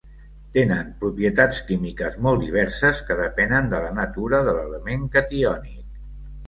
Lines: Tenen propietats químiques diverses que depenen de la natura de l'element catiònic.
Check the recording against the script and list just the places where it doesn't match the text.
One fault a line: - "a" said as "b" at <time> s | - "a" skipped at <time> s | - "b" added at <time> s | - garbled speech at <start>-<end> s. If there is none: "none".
- "molt" added at 2.3 s